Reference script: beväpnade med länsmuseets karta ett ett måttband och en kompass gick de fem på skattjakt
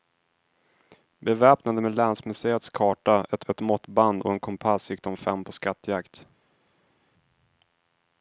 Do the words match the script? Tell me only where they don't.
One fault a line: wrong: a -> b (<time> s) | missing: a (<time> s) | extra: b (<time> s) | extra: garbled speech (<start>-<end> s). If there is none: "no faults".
no faults